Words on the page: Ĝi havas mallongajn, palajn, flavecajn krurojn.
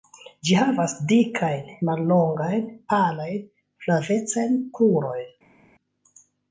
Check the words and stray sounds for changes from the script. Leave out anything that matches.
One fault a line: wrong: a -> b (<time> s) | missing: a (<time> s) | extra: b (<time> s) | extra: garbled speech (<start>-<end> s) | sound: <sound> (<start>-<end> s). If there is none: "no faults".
extra: dikajn (1.1 s)